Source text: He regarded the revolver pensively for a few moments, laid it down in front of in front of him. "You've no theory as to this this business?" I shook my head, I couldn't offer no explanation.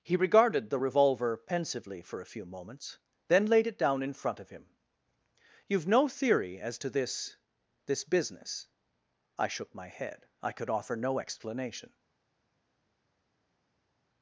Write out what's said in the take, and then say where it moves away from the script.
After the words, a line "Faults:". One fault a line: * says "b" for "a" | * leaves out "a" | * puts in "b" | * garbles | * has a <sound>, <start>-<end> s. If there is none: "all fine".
He regarded the revolver pensively for a few moments, then laid it down in front of him. "You've no theory as to this this business?" I shook my head, I could offer no explanation.
Faults:
* puts in "then"
* leaves out "in front of"
* says "could" for "couldn't"